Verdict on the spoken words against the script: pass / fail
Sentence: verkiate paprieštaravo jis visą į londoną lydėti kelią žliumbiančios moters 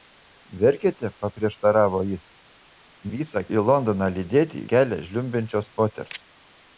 pass